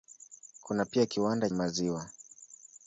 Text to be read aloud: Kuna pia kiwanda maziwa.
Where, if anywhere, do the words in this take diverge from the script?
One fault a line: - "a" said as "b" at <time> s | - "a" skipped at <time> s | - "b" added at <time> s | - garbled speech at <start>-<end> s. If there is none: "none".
none